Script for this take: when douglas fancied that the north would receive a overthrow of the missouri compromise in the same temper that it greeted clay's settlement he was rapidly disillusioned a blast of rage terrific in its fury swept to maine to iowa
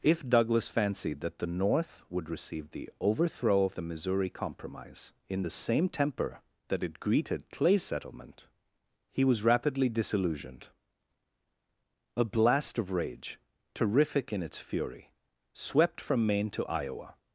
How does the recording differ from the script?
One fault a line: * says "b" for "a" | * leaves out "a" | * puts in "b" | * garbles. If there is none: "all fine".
* says "if" for "when"
* says "the" for "a"
* says "from" for "to"